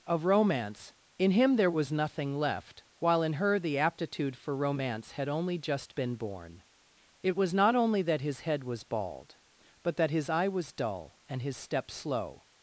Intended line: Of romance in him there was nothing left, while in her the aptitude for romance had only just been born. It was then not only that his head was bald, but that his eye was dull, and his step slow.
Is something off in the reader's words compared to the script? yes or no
yes